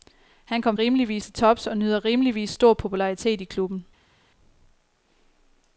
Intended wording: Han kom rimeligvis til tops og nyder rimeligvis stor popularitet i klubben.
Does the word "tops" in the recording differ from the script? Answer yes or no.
no